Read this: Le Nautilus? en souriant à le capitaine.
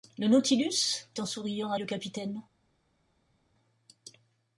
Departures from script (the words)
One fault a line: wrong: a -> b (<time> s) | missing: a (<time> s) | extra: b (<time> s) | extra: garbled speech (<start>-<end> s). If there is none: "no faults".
no faults